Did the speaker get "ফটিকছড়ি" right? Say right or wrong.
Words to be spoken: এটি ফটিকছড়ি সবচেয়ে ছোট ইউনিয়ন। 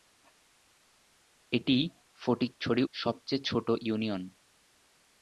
right